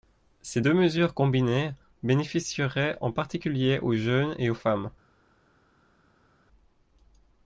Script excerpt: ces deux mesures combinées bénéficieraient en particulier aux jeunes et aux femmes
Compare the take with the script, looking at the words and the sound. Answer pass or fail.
pass